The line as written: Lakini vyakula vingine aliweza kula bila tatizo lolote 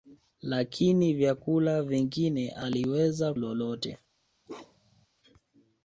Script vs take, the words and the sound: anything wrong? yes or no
yes